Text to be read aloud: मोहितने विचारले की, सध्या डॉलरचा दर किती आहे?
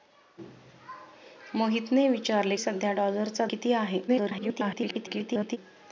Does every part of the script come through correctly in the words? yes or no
no